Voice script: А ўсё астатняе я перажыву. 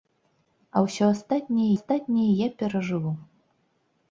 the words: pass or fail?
fail